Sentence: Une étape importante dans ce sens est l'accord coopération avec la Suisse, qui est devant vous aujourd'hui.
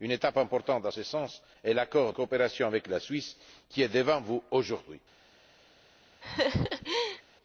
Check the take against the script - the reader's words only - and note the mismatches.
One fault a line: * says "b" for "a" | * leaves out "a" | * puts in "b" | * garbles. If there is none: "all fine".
all fine